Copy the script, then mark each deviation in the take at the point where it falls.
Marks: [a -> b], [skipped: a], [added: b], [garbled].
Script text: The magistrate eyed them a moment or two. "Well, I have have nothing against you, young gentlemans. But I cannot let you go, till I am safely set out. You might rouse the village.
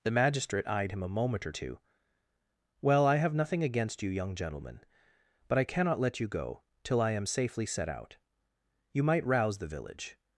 The magistrate eyed [them -> him] a moment or two. "Well, I have [skipped: have] nothing against you, young [gentlemans. -> gentleman] But I cannot let you go, till I am safely set out. You might rouse the village.